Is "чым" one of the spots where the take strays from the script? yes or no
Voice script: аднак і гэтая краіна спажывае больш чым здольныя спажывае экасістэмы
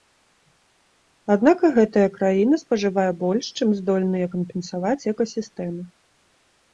no